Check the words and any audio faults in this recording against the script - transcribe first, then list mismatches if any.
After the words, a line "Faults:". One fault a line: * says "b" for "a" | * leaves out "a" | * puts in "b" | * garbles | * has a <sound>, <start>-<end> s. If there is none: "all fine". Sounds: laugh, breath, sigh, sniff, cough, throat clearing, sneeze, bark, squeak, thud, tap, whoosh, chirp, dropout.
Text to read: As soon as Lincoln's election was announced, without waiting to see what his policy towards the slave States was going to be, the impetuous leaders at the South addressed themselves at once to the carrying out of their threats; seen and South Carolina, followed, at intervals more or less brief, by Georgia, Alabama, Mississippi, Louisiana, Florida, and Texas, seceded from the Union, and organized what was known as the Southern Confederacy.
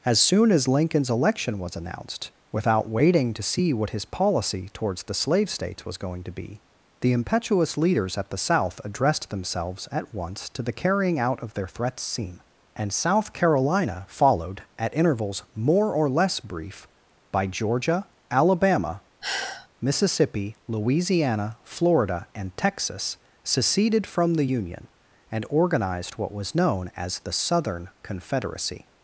As soon as Lincoln's election was announced, without waiting to see what his policy towards the slave States was going to be, the impetuous leaders at the South addressed themselves at once to the carrying out of their threats; seen and South Carolina, followed, at intervals more or less brief, by Georgia, Alabama, Mississippi, Louisiana, Florida, and Texas, seceded from the Union, and organized what was known as the Southern Confederacy.
Faults:
* has a sigh, 19.2-19.7 s